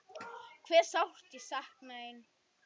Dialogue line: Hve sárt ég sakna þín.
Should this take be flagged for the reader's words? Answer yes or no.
no